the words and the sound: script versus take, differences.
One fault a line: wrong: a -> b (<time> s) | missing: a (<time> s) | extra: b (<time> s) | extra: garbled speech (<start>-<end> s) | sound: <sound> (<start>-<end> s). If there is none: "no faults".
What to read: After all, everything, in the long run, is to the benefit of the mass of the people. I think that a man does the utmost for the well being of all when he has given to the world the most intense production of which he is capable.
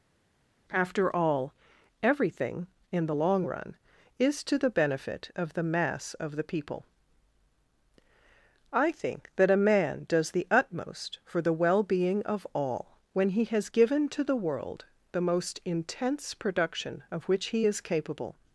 no faults